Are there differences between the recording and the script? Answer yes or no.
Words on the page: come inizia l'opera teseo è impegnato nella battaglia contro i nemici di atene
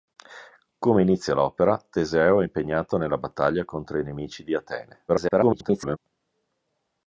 yes